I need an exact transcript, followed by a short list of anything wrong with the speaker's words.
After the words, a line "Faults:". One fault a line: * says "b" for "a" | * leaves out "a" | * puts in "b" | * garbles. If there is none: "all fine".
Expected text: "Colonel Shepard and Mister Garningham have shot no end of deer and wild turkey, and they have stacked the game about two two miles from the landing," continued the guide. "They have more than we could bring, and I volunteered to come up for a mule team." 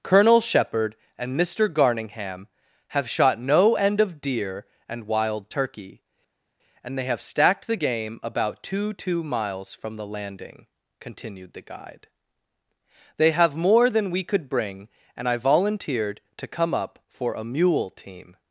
"Colonel Shepard and Mister Garningham have shot no end of deer and wild turkey, and they have stacked the game about two two miles from the landing," continued the guide. "They have more than we could bring, and I volunteered to come up for a mule team."
Faults:
all fine